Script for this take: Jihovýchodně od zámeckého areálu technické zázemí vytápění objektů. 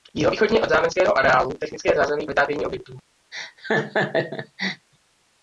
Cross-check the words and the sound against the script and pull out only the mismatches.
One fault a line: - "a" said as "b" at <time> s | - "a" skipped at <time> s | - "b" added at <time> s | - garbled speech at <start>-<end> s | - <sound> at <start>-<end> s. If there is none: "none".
- laugh at 3.3-4.9 s